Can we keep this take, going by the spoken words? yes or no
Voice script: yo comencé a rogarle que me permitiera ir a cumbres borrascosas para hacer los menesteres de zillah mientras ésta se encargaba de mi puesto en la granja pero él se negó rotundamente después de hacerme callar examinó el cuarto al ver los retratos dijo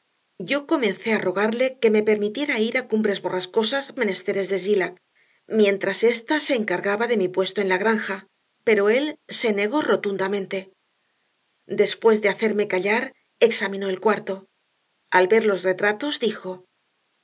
no